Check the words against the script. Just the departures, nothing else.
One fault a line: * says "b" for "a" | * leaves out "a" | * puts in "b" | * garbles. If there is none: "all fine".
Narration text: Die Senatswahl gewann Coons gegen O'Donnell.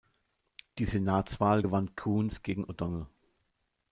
all fine